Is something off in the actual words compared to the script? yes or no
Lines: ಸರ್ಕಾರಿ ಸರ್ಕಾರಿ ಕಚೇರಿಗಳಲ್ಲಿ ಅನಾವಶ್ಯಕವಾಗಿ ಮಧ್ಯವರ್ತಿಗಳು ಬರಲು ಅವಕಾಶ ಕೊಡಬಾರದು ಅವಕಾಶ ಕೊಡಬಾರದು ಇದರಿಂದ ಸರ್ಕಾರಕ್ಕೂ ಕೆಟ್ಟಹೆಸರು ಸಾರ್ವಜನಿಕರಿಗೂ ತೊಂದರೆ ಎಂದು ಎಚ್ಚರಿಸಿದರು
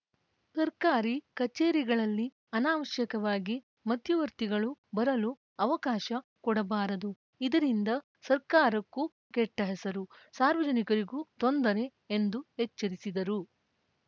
yes